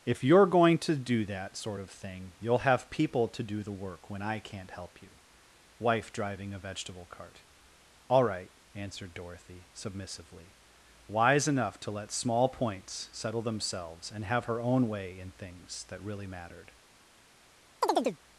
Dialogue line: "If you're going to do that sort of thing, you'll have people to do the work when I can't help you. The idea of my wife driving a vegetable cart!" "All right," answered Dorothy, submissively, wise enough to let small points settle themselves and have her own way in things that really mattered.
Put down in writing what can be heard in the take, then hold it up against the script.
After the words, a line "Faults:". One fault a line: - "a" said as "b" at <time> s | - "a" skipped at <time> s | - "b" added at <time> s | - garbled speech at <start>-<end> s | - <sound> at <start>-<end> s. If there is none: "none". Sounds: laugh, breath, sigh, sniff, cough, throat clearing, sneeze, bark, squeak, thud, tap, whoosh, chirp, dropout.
"If you're going to do that sort of thing, you'll have people to do the work when I can't help you. wife driving a vegetable cart!" "All right," answered Dorothy, submissively, wise enough to let small points settle themselves and have her own way in things that really mattered.
Faults:
- "The idea of my" skipped at 5.2 s
- chirp at 17.8-18.2 s